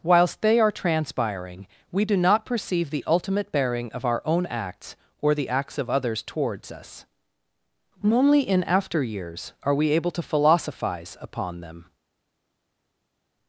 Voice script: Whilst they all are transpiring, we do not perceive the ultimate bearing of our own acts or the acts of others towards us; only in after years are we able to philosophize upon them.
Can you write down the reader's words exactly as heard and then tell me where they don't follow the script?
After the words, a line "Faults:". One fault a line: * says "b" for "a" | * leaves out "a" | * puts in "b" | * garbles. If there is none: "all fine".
Whilst they are transpiring, we do not perceive the ultimate bearing of our own acts or the acts of others towards us; only in after years are we able to philosophize upon them.
Faults:
* leaves out "all"